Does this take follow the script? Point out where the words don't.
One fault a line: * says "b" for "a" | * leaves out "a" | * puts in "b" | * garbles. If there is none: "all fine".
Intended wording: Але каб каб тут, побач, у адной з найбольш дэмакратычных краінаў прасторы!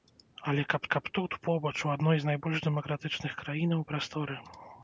all fine